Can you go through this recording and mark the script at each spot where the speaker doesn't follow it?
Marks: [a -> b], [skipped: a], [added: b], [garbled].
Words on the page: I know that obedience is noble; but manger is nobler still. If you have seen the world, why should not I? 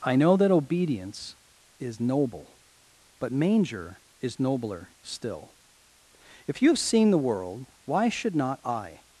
I know that obedience is noble; but manger is nobler still. If you have seen the world, why should not I?